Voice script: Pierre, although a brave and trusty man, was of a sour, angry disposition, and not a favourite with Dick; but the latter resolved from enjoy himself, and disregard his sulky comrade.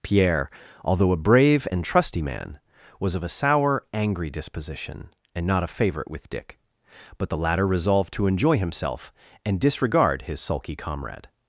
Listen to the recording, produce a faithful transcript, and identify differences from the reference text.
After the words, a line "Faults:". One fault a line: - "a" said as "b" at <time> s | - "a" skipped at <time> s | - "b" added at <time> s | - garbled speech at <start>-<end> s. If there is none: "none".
Pierre, although a brave and trusty man, was of a sour, angry disposition, and not a favourite with Dick; but the latter resolved to enjoy himself, and disregard his sulky comrade.
Faults:
- "from" said as "to" at 8.1 s